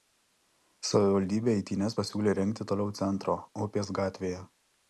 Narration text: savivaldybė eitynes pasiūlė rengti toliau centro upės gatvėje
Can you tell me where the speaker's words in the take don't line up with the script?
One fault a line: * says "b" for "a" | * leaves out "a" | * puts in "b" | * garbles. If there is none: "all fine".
all fine